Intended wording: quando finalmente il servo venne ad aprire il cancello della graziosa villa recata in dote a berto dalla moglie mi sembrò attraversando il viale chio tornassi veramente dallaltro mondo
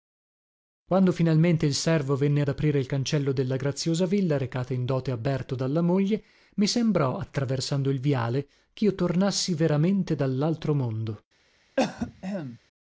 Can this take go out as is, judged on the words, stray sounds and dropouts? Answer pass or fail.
fail